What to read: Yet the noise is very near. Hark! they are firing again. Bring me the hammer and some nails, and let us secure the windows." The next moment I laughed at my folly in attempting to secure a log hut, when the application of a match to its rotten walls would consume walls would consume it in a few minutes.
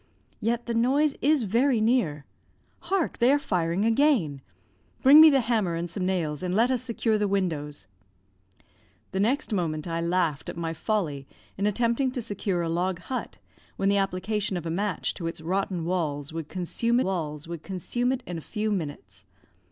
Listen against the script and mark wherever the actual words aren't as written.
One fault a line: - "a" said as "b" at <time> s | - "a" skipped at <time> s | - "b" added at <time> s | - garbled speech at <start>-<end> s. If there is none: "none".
none